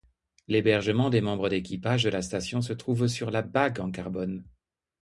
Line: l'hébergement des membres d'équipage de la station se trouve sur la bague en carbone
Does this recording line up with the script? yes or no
yes